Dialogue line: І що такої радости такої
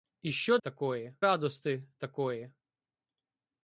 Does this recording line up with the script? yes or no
yes